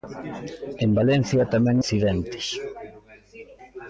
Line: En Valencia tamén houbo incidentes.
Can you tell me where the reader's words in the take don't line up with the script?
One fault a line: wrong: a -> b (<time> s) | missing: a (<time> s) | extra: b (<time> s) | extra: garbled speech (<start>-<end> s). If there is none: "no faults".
missing: houbo (1.8 s)